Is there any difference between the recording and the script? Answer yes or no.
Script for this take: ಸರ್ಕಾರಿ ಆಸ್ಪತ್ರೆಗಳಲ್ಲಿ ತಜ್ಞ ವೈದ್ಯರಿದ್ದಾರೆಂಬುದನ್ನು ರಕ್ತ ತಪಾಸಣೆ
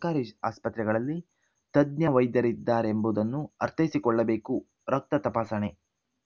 yes